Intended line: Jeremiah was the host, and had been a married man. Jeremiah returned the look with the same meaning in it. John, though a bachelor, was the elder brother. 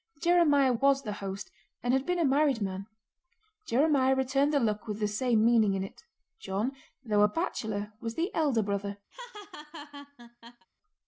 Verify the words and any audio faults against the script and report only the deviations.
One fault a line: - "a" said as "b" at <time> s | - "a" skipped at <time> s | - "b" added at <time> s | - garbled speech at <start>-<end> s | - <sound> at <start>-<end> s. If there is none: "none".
- laugh at 9.1-10.7 s